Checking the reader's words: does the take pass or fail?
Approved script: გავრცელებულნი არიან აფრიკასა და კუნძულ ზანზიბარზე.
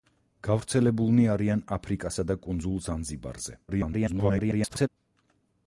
fail